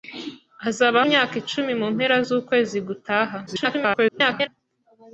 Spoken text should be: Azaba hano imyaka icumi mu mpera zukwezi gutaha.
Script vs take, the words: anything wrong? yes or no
yes